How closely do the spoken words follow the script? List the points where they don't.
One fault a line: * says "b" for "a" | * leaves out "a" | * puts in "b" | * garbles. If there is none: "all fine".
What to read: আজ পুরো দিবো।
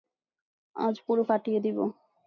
* puts in "ফাটিয়ে"